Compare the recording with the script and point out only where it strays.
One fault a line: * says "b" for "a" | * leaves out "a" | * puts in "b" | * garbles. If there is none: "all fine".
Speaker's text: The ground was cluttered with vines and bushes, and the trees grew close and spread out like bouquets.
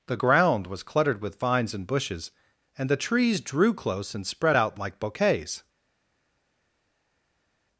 * says "drew" for "grew"